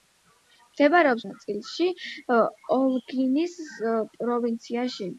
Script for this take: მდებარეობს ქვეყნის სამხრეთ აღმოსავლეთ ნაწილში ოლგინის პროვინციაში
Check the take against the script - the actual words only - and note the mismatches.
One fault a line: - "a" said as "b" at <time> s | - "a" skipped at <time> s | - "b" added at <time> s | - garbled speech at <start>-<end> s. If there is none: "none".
- "ქვეყნის სამხრეთ აღმოსავლეთ" skipped at 1.2 s